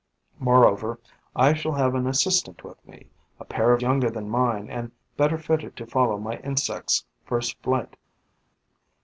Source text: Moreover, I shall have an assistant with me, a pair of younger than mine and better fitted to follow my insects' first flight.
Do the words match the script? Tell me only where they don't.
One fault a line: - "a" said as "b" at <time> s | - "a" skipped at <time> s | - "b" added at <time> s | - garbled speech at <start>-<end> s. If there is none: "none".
none